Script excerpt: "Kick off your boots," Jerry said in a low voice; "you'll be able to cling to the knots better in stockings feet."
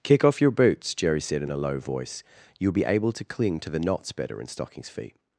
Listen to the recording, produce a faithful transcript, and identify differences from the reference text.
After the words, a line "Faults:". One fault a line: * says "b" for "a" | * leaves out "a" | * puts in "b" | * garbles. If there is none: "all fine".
"Kick off your boots," Jerry said in a low voice; "you'll be able to cling to the knots better in stockings feet."
Faults:
all fine